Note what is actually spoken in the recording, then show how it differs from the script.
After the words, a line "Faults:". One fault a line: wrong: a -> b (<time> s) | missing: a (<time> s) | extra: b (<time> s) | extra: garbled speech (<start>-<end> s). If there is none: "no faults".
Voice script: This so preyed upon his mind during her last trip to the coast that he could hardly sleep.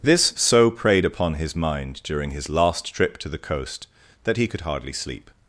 This so preyed upon his mind during his last trip to the coast that he could hardly sleep.
Faults:
wrong: her -> his (2.3 s)